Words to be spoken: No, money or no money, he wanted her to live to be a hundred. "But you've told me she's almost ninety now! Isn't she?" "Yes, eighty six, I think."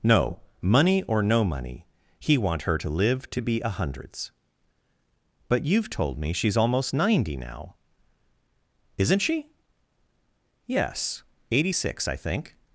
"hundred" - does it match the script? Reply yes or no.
no